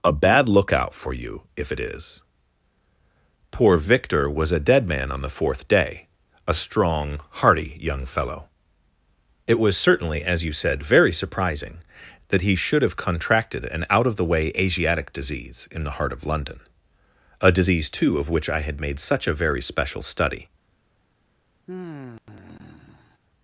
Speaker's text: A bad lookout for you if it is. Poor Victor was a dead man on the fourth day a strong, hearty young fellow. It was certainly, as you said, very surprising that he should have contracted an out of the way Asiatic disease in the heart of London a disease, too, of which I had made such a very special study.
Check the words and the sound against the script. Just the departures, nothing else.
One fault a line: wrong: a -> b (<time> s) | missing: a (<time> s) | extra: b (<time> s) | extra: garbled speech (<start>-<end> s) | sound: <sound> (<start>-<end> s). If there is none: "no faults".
sound: sigh (21.7-23.2 s)